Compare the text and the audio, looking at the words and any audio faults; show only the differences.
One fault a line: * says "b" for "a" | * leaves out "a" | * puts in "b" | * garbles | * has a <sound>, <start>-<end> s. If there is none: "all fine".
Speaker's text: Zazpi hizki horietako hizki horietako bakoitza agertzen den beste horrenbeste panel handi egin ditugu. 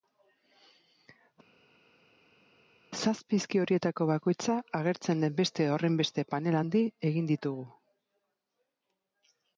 * leaves out "hizki horietako"